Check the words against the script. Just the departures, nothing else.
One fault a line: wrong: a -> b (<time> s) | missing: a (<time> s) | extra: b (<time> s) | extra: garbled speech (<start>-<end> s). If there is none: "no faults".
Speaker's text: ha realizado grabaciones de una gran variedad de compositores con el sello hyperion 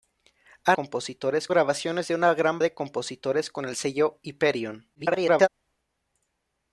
wrong: realizado -> compositores (0.7 s)
missing: variedad (2.6 s)
extra: garbled speech (4.9-5.5 s)